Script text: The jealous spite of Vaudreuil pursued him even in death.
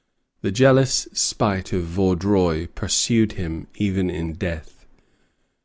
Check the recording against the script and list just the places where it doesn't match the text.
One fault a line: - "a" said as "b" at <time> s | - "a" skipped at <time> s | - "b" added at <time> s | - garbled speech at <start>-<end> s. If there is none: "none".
none